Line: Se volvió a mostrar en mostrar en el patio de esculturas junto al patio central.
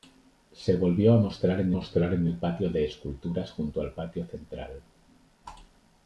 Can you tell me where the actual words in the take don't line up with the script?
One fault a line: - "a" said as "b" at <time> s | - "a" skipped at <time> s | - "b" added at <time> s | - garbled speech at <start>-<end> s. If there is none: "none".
none